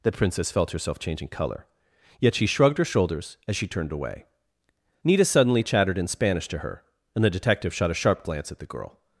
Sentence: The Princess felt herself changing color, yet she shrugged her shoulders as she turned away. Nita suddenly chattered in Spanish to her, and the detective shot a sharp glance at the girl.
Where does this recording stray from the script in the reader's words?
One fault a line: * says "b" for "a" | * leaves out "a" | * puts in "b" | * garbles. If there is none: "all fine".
all fine